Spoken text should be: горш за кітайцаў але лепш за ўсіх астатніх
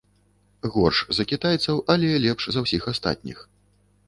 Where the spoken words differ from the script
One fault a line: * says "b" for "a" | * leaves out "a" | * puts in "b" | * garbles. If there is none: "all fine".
all fine